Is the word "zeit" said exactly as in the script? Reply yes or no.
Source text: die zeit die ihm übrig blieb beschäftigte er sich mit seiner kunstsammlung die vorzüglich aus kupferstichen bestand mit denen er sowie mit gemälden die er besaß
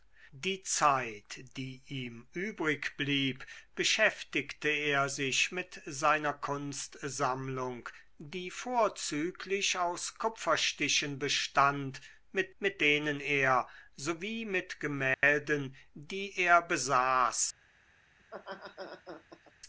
yes